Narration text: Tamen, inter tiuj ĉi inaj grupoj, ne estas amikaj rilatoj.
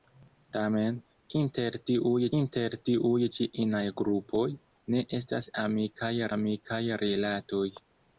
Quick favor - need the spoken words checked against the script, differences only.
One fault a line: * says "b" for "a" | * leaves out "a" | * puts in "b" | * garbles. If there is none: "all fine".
* puts in "inter tiuj"
* puts in "amikaj"